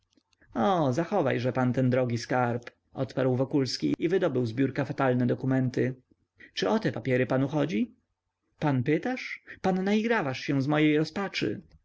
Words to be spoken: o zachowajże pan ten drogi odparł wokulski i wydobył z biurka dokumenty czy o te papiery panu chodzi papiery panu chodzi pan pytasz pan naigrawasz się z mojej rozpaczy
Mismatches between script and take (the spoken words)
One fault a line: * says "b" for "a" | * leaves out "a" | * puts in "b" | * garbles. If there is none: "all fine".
* puts in "skarb"
* puts in "fatalne"
* leaves out "papiery panu chodzi"